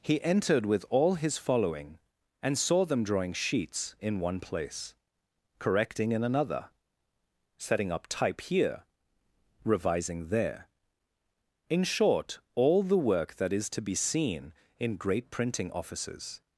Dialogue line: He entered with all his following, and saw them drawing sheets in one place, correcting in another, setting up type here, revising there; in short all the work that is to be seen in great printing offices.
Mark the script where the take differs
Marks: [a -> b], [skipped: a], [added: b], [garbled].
He entered with all his following, and saw them drawing sheets in one place, correcting in another, setting up type here, revising there; in short all the work that is to be seen in great printing offices.